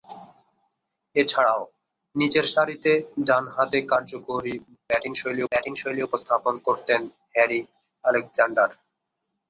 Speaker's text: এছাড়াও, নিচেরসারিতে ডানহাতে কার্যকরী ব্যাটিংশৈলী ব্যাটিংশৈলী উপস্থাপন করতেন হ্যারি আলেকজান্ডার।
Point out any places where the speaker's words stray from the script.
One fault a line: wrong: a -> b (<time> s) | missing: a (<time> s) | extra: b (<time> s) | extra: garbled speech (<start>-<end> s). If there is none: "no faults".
no faults